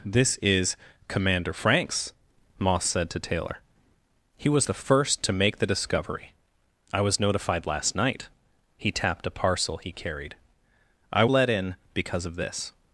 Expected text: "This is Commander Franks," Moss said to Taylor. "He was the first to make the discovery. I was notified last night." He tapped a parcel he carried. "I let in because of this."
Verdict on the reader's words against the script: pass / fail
pass